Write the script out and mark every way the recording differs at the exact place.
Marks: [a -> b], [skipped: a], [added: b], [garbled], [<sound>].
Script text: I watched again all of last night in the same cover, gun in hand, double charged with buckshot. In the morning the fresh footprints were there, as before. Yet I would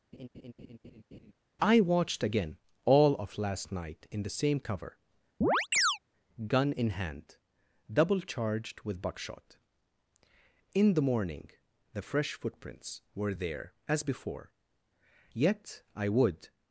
[laugh] I watched again all of last night in the same cover, [chirp] gun in hand, double charged with buckshot. In the morning the fresh footprints were there, as before. Yet I would